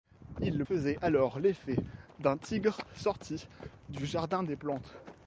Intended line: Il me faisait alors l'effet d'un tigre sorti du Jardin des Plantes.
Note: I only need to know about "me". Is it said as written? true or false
false